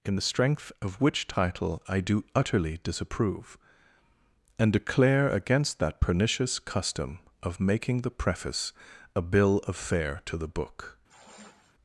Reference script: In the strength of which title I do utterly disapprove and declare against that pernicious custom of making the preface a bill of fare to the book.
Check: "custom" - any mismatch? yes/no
no